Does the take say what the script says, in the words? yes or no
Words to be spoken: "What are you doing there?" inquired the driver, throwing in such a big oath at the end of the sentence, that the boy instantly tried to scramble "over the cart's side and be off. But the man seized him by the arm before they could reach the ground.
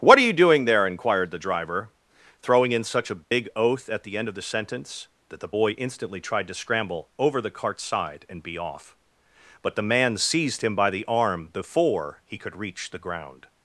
no